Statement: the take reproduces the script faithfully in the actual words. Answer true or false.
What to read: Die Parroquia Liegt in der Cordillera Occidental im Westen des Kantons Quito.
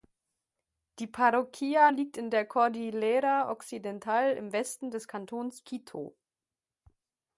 true